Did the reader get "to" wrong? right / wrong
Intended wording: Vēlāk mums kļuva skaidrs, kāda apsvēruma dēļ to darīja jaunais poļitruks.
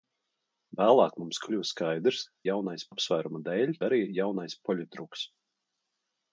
wrong